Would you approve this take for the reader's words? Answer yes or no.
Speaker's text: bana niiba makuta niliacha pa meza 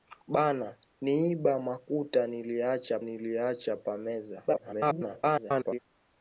no